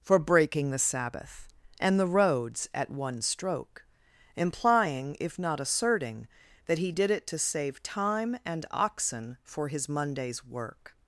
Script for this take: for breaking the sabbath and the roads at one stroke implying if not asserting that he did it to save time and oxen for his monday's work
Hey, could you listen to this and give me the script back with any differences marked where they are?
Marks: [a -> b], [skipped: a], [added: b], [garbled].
for breaking the sabbath and the roads at one stroke implying if not asserting that he did it to save time and oxen for his monday's work